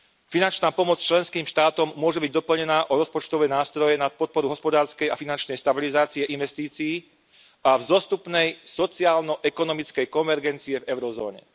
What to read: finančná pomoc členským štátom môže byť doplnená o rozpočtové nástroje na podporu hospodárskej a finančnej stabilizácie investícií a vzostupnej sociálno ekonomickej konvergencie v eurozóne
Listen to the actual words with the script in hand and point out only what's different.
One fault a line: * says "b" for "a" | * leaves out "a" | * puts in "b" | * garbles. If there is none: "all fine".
all fine